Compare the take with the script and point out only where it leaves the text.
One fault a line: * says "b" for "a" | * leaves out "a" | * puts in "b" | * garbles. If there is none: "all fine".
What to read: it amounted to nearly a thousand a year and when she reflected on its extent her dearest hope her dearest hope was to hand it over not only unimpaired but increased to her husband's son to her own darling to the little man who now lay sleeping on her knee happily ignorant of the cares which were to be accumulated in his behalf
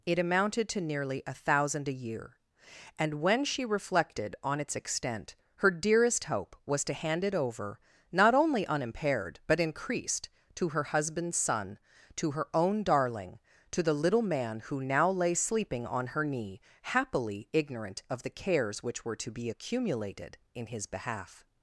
* leaves out "her dearest hope"